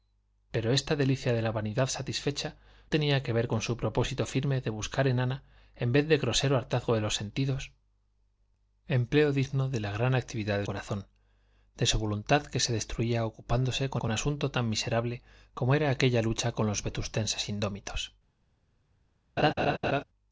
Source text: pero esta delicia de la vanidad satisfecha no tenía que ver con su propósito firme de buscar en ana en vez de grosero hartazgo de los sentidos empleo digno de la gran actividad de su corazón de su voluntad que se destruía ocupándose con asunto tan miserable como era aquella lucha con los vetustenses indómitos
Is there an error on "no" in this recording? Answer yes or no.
yes